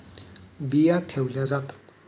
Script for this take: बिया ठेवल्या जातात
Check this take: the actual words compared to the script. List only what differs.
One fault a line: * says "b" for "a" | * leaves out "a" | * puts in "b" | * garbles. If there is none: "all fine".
all fine